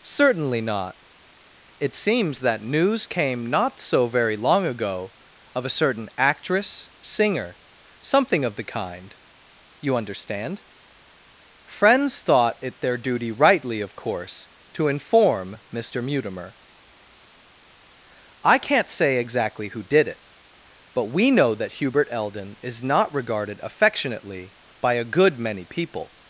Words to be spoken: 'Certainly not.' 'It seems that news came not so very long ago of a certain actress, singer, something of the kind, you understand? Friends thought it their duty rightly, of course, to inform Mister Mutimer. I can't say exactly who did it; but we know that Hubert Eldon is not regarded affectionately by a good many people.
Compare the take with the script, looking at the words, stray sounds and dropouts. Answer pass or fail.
pass